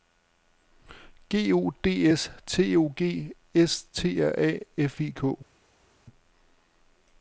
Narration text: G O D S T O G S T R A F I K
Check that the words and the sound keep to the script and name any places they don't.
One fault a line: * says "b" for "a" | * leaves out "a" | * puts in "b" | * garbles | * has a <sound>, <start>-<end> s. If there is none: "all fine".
all fine